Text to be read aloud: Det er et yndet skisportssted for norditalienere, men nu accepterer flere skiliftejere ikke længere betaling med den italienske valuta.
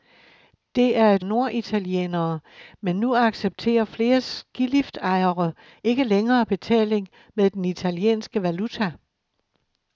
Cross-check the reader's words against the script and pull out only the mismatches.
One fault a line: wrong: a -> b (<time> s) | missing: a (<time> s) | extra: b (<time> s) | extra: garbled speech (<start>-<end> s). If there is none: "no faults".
missing: yndet skisportssted for (1.2 s)